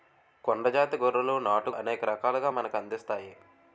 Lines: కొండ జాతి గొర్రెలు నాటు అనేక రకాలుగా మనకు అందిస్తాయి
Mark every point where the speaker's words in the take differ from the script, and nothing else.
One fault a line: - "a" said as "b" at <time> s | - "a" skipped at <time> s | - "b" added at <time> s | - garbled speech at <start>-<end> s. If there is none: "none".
none